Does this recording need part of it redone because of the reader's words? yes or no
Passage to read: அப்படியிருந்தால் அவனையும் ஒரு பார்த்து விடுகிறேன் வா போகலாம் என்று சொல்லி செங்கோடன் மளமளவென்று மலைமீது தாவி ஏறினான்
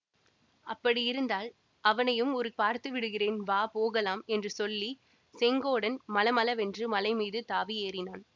no